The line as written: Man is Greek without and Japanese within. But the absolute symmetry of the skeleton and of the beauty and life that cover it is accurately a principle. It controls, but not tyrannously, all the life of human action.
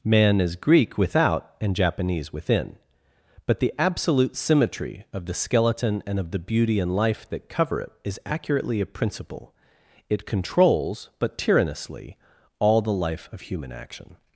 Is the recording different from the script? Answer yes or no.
yes